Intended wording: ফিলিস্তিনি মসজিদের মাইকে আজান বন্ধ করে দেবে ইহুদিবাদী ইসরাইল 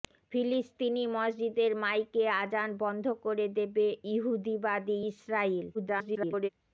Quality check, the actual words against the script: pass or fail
fail